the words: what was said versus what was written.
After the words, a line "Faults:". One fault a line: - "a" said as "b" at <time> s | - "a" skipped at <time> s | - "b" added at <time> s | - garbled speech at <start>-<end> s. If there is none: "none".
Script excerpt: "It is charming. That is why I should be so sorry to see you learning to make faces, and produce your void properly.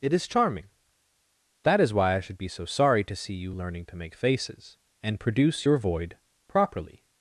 "It is charming. That is why I should be so sorry to see you learning to make faces, and produce your void properly.
Faults:
none